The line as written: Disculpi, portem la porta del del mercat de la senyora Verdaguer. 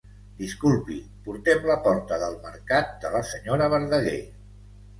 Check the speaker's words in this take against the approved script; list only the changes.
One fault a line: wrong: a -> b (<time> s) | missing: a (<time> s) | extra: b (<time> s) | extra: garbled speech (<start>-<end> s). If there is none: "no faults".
missing: del (2.4 s)